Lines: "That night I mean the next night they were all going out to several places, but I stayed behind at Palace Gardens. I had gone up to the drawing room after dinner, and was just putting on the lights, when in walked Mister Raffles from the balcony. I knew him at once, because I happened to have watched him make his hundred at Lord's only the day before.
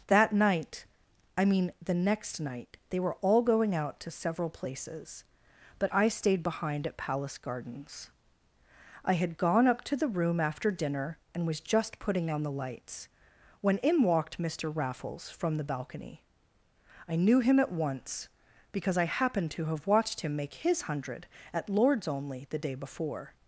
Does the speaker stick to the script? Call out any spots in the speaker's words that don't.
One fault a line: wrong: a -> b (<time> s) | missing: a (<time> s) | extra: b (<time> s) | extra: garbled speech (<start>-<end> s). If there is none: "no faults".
missing: drawing (10.1 s)